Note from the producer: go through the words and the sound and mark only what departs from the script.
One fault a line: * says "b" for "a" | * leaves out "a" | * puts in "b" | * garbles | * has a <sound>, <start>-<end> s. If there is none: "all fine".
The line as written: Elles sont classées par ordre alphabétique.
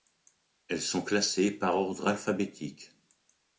all fine